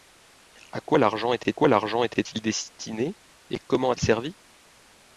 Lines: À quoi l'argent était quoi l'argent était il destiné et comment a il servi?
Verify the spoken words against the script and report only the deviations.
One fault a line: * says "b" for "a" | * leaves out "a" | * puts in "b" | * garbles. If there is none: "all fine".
all fine